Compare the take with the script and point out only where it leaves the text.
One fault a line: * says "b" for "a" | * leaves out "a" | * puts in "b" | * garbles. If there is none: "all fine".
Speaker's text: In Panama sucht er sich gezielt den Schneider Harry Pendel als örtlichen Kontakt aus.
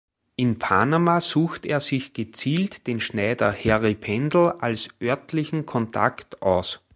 all fine